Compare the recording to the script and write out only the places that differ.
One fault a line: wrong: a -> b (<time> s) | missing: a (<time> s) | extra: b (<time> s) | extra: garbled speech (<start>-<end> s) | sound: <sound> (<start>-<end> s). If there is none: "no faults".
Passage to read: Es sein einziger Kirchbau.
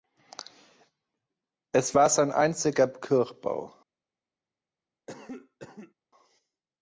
extra: war (1.9 s)
sound: cough (5.1-5.9 s)